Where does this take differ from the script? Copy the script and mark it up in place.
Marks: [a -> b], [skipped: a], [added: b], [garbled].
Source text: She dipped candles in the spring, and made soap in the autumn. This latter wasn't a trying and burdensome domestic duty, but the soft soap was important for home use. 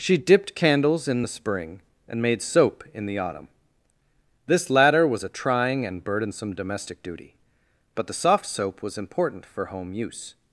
She dipped candles in the spring, and made soap in the autumn. This latter [wasn't -> was] a trying and burdensome domestic duty, but the soft soap was important for home use.